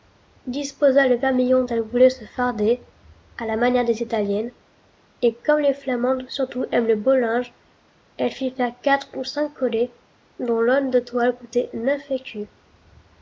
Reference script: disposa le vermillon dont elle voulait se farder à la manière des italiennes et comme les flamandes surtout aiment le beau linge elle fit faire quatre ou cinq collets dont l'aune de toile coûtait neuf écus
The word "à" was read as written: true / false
true